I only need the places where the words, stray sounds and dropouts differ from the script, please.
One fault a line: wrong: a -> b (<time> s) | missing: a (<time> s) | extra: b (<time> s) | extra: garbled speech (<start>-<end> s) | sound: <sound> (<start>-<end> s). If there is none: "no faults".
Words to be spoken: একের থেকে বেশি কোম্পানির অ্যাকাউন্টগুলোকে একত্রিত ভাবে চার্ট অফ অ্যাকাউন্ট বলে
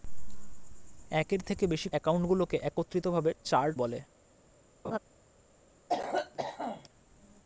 missing: কোম্পানির (1.9 s)
missing: অফ অ্যাকাউন্ট (3.8 s)
sound: laugh (4.8-5.0 s)
sound: cough (5.9-6.9 s)